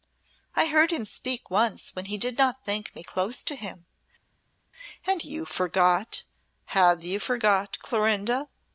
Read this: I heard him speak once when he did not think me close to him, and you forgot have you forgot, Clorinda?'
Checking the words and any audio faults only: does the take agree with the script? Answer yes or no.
yes